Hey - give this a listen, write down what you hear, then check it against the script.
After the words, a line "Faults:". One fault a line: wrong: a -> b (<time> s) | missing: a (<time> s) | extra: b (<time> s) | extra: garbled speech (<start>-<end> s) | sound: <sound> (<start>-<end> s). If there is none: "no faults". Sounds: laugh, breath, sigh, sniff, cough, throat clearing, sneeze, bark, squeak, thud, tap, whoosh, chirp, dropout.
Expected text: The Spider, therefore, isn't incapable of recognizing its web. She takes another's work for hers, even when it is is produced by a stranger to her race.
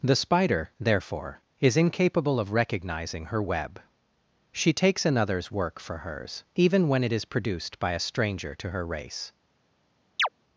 The Spider, therefore, is incapable of recognizing her web. She takes another's work for hers, even when it is produced by a stranger to her race.
Faults:
wrong: isn't -> is (1.6 s)
wrong: its -> her (3.2 s)
missing: is (7.2 s)
sound: chirp (10.2-10.3 s)